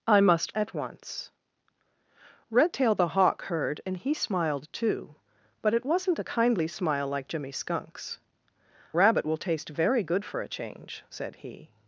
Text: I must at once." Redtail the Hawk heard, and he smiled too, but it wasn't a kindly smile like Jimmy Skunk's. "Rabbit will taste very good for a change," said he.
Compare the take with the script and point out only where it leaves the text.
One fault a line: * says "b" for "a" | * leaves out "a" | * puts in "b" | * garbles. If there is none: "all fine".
all fine